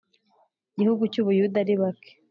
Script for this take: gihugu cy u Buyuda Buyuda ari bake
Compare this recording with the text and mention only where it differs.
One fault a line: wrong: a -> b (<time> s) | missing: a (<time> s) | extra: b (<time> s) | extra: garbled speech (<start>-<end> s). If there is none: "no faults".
missing: Buyuda (1.6 s)